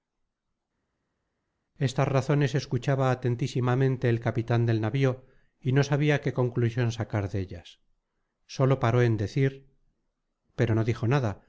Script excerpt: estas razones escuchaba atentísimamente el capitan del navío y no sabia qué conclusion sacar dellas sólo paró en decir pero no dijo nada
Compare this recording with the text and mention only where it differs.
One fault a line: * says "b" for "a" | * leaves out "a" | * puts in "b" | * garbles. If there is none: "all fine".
all fine